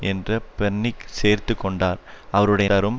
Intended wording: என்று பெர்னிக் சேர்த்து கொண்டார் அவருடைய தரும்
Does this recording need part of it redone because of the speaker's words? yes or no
no